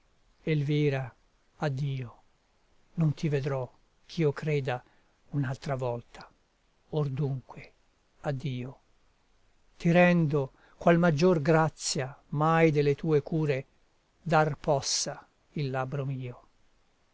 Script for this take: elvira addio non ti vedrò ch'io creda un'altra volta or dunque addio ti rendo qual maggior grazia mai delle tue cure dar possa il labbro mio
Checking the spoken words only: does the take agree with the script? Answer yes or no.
yes